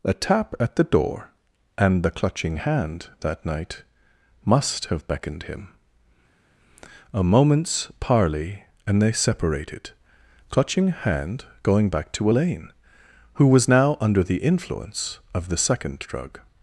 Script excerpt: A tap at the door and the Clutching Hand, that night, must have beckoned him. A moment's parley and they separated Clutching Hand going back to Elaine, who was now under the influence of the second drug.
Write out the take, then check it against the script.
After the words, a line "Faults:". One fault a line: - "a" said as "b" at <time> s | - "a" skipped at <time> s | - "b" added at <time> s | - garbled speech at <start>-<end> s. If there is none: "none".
A tap at the door and the Clutching Hand, that night, must have beckoned him. A moment's parley and they separated Clutching Hand going back to Elaine, who was now under the influence of the second drug.
Faults:
none